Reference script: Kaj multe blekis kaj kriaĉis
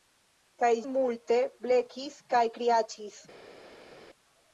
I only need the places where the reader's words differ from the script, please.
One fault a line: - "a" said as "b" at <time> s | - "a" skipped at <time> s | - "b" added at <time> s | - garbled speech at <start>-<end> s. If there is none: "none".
none